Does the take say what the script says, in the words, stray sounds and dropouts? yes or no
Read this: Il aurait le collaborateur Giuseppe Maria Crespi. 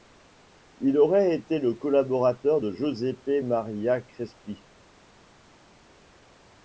no